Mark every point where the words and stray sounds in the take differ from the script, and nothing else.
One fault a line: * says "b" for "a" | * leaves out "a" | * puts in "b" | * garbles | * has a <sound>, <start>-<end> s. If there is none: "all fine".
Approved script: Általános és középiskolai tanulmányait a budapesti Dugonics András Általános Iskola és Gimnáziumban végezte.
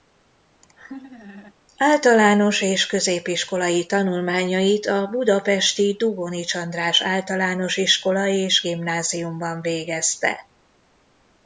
* has a laugh, 0.6-1.5 s